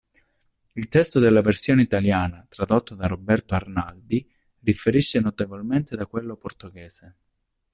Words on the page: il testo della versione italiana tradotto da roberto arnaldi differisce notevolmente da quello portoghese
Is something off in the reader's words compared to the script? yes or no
no